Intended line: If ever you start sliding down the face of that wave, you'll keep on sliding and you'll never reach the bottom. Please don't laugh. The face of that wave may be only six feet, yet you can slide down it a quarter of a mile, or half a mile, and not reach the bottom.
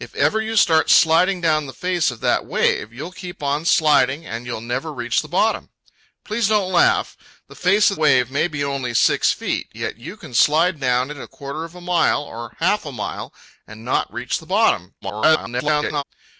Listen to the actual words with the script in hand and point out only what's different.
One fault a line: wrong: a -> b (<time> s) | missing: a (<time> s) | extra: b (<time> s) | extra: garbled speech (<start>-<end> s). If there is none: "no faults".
missing: that (8.0 s)
extra: garbled speech (15.0-16.0 s)